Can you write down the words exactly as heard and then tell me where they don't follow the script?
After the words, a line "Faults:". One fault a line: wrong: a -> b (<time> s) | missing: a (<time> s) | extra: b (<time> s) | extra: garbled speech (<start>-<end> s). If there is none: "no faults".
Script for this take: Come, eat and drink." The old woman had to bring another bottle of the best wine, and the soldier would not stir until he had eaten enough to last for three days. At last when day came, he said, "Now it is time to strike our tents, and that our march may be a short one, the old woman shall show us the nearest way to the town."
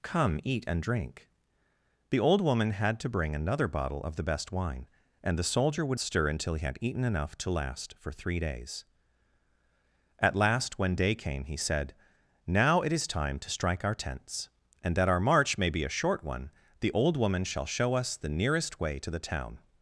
Come, eat and drink." The old woman had to bring another bottle of the best wine, and the soldier would stir until he had eaten enough to last for three days. At last when day came, he said, "Now it is time to strike our tents, and that our march may be a short one, the old woman shall show us the nearest way to the town."
Faults:
missing: not (6.0 s)